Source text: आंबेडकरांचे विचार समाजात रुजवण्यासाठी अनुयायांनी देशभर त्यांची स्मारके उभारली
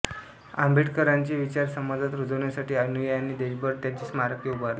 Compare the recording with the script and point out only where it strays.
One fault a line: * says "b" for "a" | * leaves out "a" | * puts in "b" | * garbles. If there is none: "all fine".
all fine